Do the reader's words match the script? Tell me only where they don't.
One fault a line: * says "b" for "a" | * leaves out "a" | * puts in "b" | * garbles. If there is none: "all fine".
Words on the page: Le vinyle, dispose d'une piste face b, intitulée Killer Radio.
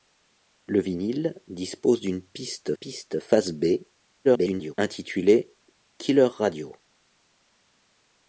* puts in "piste"
* garbles